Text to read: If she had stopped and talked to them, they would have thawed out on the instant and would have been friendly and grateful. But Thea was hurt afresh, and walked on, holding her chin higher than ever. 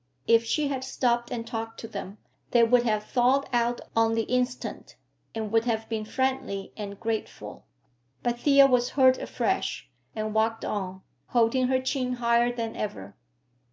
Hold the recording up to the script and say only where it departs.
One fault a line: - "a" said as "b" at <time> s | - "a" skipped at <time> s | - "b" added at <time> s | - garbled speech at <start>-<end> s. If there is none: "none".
none